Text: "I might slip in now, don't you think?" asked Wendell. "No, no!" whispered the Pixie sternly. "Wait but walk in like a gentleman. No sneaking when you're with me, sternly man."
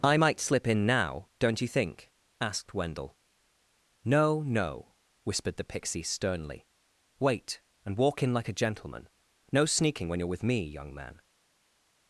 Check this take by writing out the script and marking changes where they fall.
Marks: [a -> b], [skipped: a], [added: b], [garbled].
"I might slip in now, don't you think?" asked Wendell. "No, no!" whispered the Pixie sternly. "Wait [but -> and] walk in like a gentleman. No sneaking when you're with me, [sternly -> young] man."